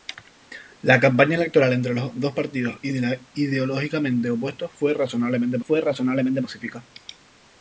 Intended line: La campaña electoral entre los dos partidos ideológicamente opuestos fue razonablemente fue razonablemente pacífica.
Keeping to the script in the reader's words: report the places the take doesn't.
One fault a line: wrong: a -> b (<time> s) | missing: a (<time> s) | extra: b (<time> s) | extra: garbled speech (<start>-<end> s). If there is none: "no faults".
no faults